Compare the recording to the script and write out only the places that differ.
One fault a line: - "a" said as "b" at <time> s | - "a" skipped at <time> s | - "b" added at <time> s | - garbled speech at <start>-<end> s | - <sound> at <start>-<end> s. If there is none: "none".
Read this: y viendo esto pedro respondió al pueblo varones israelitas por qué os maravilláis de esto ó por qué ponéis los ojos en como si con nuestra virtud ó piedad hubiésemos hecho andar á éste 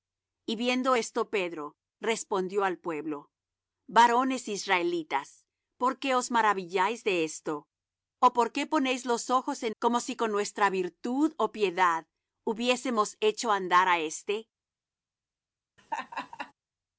- laugh at 15.8-16.5 s